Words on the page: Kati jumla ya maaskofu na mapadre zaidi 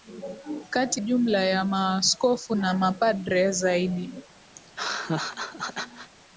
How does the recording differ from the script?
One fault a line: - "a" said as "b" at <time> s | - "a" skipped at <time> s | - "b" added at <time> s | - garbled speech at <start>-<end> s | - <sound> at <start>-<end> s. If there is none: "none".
- laugh at 4.6-6.1 s